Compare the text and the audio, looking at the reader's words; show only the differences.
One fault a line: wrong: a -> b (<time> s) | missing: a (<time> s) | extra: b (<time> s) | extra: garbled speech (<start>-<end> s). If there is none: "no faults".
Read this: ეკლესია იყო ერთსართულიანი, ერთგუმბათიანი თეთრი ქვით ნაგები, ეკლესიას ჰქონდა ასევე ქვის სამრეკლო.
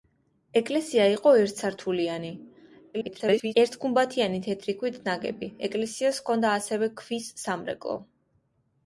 extra: garbled speech (2.9-3.5 s)